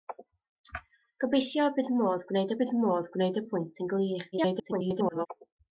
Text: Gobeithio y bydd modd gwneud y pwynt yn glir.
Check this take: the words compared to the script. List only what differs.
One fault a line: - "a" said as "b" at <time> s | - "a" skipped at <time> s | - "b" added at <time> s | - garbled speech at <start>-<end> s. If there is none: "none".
- "bydd modd gwneud" added at 2.6 s
- garbled speech at 4.3-5.3 s